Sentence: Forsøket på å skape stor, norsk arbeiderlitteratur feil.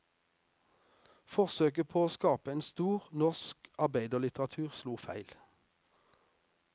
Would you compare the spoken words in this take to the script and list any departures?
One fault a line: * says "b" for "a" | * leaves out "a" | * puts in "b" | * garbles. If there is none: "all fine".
* puts in "en"
* puts in "slo"